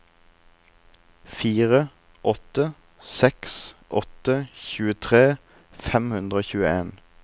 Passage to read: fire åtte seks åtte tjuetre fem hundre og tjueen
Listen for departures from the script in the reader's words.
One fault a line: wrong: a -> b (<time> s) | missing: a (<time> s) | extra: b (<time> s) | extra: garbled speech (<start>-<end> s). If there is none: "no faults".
no faults